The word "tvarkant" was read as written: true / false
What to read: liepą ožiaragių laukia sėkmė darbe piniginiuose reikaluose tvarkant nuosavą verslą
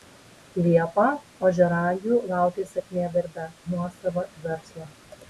false